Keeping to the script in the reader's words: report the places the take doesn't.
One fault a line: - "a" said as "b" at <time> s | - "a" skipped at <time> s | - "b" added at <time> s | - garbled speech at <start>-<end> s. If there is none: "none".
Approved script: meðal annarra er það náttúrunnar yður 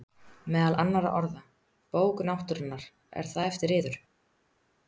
- "orða bók náttúrunnar" added at 1.2 s
- "náttúrunnar" said as "eftir" at 3.5 s